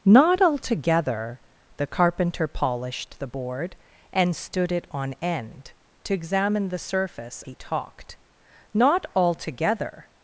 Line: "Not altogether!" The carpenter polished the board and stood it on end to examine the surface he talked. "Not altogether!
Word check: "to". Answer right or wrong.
right